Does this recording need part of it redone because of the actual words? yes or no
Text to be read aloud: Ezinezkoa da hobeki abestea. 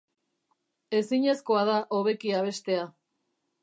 no